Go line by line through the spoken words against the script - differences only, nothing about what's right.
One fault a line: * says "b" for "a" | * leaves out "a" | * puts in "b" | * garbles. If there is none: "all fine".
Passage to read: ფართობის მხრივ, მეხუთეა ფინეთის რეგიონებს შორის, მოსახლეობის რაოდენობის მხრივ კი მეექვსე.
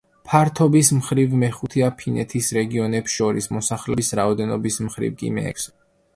all fine